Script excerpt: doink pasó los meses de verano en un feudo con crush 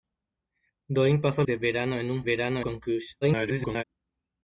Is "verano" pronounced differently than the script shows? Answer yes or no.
no